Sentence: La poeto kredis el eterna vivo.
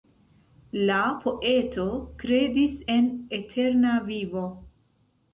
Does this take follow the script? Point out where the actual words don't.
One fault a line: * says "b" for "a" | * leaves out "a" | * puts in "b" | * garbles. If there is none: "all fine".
* says "en" for "el"